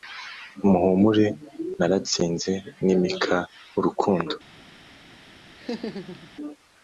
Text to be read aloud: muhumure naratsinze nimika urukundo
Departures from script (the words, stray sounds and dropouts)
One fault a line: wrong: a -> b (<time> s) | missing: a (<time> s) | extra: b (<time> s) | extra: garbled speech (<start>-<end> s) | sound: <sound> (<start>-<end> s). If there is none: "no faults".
sound: laugh (5.6-6.3 s)